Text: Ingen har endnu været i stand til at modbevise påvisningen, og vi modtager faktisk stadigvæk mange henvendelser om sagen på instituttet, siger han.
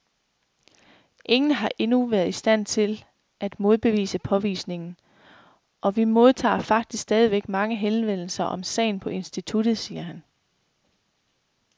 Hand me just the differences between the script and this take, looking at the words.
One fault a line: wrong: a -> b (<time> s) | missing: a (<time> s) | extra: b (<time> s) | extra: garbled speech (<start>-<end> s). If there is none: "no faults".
no faults